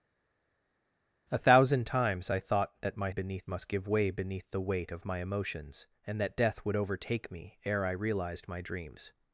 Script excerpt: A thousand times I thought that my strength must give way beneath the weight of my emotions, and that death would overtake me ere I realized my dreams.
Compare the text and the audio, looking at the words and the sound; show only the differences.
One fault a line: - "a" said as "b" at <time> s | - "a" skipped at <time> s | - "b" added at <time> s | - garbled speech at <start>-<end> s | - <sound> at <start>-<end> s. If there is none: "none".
- "strength" said as "beneath" at 3.1 s